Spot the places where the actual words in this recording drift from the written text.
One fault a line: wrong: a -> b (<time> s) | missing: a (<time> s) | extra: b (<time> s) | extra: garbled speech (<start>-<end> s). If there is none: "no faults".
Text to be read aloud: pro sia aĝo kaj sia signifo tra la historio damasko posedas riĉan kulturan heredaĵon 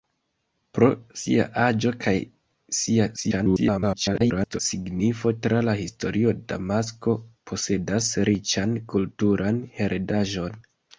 extra: garbled speech (3.2-4.6 s)